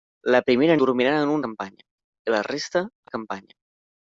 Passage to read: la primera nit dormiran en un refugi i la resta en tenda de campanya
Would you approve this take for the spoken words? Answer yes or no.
no